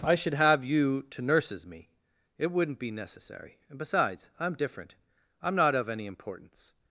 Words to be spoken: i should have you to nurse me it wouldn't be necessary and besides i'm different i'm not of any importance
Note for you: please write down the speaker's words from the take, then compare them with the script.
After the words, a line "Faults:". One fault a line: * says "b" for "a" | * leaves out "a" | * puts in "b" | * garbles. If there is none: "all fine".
i should have you to nurses me it wouldn't be necessary and besides i'm different i'm not of any importance
Faults:
* says "nurses" for "nurse"